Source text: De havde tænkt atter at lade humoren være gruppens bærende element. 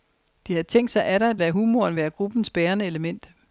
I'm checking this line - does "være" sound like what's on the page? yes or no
yes